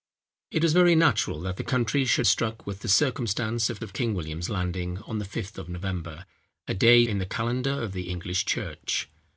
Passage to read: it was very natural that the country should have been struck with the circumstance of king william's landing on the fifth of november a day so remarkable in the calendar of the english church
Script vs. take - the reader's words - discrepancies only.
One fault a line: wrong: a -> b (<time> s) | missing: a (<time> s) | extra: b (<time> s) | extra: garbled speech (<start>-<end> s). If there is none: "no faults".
missing: have been (2.2 s)
extra: of (3.8 s)
missing: so remarkable (7.0 s)